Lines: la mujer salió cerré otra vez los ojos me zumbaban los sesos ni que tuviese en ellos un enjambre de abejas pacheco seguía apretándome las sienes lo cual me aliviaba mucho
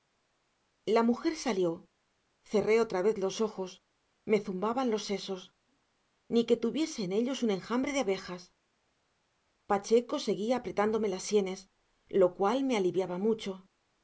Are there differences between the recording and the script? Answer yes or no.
no